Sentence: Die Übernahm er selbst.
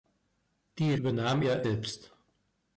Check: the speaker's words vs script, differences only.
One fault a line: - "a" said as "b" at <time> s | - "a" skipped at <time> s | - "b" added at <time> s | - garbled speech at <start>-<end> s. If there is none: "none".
none